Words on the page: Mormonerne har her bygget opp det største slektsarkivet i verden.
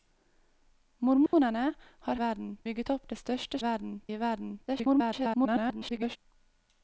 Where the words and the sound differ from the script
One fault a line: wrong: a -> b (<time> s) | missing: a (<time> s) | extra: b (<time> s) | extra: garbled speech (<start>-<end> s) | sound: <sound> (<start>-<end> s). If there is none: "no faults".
sound: dropout (1.3-1.3 s)
wrong: her -> verden (2.2 s)
wrong: slektsarkivet -> verden (3.6 s)
extra: garbled speech (4.7-6.2 s)